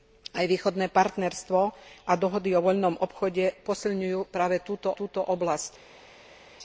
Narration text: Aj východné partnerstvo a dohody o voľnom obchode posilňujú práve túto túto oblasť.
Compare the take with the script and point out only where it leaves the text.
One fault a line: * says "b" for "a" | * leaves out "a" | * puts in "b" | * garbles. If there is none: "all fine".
all fine